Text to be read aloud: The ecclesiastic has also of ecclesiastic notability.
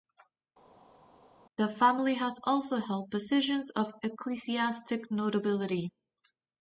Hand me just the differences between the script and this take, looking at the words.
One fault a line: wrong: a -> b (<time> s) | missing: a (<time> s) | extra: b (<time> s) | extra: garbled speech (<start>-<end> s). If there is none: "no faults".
wrong: ecclesiastic -> family (1.7 s)
extra: held positions (2.8 s)